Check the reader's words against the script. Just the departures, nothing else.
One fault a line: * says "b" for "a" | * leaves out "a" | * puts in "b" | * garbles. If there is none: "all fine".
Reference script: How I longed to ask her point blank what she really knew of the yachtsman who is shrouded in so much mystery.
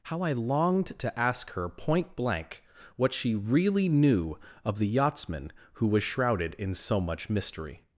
* says "was" for "is"